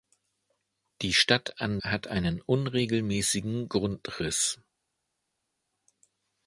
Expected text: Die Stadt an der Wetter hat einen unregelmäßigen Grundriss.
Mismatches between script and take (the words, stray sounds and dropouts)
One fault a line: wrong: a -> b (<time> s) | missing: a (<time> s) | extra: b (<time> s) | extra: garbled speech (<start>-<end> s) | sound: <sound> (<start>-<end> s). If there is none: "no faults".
missing: der Wetter (1.8 s)